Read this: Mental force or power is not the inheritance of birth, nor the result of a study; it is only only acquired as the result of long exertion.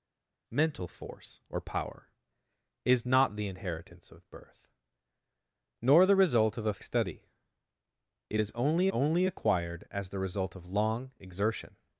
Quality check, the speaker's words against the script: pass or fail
pass